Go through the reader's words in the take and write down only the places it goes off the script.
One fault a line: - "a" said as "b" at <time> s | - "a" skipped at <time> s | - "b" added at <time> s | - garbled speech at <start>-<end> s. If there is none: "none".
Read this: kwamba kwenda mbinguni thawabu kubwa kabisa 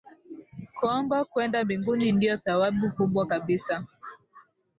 - "ndio" added at 2.1 s